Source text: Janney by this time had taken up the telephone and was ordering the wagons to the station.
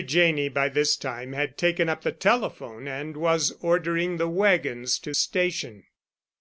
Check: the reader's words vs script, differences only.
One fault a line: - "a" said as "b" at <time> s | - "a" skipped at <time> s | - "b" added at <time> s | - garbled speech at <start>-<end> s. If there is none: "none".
- "the" skipped at 5.1 s